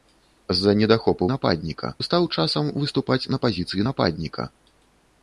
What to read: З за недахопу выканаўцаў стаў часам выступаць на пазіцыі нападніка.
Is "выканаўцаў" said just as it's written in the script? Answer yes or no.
no